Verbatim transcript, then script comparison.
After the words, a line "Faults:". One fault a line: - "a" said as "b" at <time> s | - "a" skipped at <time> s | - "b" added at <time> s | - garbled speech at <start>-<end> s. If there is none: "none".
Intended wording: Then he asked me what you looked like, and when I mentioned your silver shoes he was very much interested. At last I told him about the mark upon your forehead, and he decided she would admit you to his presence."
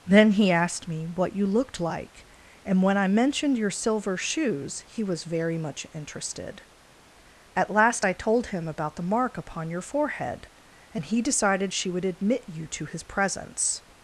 Then he asked me what you looked like, and when I mentioned your silver shoes he was very much interested. At last I told him about the mark upon your forehead, and he decided she would admit you to his presence."
Faults:
none